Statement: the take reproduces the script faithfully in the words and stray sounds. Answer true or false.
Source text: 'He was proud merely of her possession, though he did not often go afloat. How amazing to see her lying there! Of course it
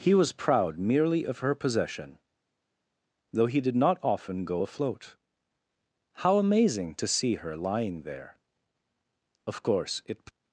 true